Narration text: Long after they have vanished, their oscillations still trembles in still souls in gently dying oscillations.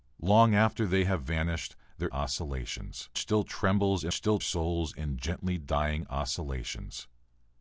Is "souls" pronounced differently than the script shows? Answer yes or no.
no